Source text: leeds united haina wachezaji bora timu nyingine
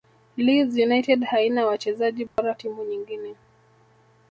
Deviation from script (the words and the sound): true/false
true